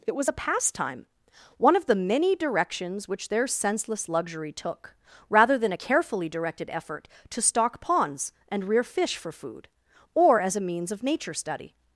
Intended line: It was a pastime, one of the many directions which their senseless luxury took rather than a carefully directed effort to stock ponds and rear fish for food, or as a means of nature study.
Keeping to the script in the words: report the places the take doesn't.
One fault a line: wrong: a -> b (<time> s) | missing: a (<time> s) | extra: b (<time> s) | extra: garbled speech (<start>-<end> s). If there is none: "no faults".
no faults